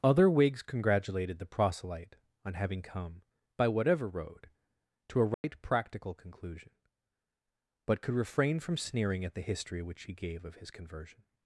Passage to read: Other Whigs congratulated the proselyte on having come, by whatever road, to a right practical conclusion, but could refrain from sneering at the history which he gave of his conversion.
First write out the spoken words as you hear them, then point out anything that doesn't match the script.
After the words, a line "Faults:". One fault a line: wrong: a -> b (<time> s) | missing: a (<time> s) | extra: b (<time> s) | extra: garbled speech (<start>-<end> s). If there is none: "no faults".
Other Whigs congratulated the proselyte on having come, by whatever road, to a right practical conclusion, but could refrain from sneering at the history which he gave of his conversion.
Faults:
no faults